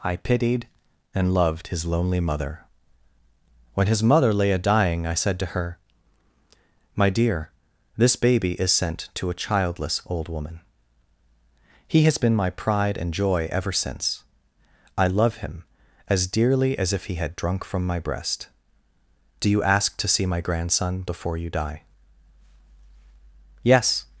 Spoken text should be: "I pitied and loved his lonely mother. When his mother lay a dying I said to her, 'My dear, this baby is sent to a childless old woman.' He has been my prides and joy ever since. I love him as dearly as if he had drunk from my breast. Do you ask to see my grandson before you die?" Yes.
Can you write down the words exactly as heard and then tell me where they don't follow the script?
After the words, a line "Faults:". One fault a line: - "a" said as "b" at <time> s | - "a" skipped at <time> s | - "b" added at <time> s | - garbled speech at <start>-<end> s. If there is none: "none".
"I pitied and loved his lonely mother. When his mother lay a dying I said to her, 'My dear, this baby is sent to a childless old woman.' He has been my pride and joy ever since. I love him as dearly as if he had drunk from my breast. Do you ask to see my grandson before you die?" Yes.
Faults:
- "prides" said as "pride" at 12.5 s